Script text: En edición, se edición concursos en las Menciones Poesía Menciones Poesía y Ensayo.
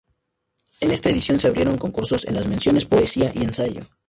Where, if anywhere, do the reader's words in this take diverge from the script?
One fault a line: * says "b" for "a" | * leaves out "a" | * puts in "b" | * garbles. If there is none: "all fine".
* puts in "esta"
* says "abrieron" for "edición"
* leaves out "Menciones Poesía"